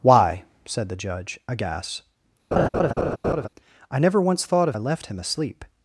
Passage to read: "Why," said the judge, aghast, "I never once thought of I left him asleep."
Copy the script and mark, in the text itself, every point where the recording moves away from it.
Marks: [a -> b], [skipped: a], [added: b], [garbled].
"Why," said the judge, aghast, "I never once thought of I left him asleep."